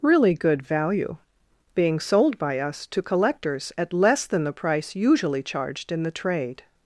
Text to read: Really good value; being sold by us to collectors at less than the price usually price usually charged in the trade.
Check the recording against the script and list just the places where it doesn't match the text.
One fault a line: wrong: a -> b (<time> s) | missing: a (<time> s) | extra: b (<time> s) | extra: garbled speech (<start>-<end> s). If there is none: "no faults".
missing: price usually (5.4 s)